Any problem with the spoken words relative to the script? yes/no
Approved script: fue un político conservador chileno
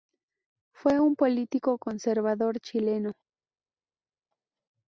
no